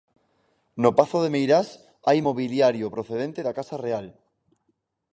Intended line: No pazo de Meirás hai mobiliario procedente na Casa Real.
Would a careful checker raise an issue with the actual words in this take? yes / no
yes